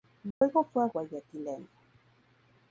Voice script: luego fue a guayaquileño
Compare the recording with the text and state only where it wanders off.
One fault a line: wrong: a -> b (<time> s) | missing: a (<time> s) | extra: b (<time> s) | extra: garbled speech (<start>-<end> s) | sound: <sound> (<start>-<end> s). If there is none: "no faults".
sound: dropout (0.3-0.4 s)